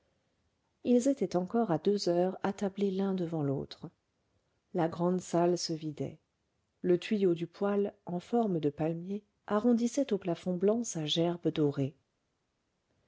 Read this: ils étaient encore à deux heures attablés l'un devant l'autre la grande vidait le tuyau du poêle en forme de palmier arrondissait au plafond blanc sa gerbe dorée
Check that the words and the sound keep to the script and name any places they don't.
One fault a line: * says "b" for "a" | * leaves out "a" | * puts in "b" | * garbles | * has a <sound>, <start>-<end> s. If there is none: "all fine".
* puts in "salle se"